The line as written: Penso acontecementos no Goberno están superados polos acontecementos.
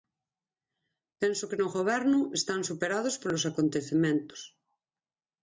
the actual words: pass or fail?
fail